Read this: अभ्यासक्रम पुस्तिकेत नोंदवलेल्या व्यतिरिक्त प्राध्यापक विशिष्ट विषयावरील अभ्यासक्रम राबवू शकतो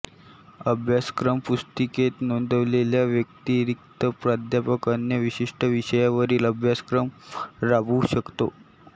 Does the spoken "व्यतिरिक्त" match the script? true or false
true